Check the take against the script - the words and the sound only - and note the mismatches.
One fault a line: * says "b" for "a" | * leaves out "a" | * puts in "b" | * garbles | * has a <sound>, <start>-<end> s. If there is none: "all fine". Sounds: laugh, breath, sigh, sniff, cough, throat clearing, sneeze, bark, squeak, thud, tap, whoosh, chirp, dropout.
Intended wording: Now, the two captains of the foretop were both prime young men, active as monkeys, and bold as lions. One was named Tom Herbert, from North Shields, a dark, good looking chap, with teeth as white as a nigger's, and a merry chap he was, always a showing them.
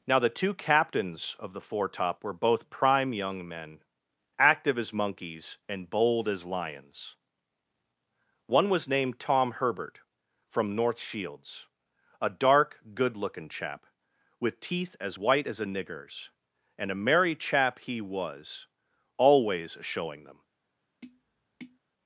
* leaves out "a"
* has a tap, 21.0-21.8 s